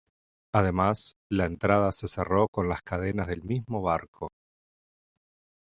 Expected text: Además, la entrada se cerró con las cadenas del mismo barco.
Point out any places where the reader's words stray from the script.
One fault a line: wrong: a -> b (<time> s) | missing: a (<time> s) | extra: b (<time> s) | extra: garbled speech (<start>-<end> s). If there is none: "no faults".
no faults